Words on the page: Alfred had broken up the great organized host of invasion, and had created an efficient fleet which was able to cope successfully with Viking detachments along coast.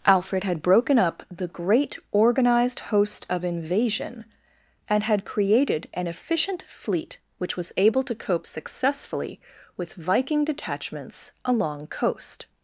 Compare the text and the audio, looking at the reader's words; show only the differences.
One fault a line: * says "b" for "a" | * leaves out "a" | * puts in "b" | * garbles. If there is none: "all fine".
all fine